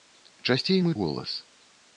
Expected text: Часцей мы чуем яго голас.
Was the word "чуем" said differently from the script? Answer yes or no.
yes